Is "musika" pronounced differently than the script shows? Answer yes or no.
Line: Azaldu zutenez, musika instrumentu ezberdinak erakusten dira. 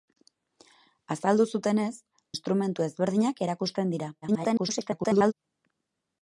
yes